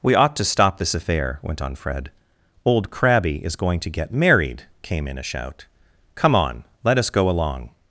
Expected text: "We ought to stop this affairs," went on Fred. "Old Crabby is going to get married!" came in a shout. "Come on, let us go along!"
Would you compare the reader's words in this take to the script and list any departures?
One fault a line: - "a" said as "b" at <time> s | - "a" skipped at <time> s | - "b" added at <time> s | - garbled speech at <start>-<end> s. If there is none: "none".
- "affairs" said as "affair" at 0.9 s